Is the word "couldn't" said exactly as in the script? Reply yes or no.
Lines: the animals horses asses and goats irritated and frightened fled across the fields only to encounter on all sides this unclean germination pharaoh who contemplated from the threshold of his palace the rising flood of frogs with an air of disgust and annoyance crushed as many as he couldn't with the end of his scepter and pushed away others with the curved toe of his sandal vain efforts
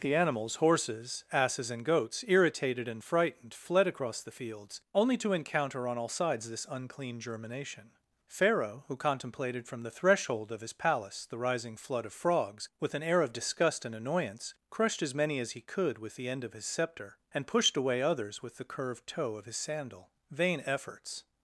no